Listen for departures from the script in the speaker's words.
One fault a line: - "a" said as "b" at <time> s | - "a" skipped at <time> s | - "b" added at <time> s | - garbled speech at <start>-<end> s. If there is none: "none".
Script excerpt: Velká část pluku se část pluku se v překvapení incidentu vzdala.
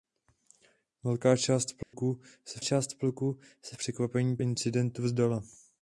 none